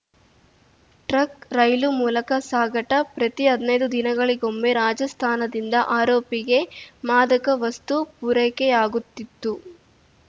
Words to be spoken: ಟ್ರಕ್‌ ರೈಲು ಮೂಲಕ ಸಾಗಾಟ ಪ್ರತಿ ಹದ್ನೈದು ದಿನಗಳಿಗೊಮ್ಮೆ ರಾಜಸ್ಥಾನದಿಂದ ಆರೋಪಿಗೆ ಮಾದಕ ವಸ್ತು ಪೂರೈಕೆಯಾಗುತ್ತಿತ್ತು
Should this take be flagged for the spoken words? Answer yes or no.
no